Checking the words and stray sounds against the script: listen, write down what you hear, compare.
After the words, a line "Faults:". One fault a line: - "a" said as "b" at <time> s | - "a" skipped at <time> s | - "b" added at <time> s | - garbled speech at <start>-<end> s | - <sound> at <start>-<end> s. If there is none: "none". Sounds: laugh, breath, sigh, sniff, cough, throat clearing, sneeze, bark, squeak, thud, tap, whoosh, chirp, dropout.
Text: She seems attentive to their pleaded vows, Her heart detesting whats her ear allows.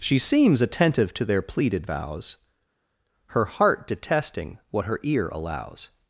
She seems attentive to their pleaded vows, Her heart detesting what her ear allows.
Faults:
- "whats" said as "what" at 4.7 s